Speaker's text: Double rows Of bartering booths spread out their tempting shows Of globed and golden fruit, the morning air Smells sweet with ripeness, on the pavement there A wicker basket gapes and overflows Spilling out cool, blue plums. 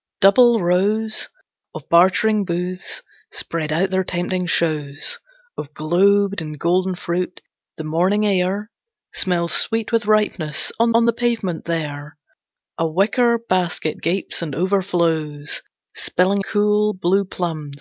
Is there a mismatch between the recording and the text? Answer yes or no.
yes